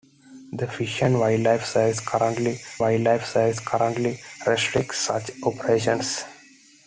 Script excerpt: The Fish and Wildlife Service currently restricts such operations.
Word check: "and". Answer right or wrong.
right